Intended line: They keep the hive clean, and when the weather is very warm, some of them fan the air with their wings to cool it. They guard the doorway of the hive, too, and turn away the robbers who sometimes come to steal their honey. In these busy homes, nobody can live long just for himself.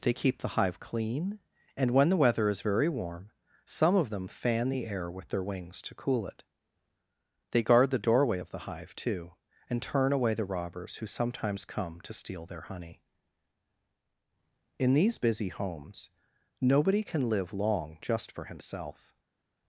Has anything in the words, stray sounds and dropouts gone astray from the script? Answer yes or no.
no